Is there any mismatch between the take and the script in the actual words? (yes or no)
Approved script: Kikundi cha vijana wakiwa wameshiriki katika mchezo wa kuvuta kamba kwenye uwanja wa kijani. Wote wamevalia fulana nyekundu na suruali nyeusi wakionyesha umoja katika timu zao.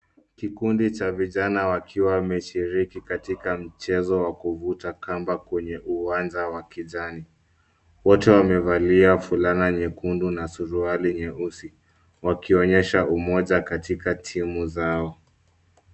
no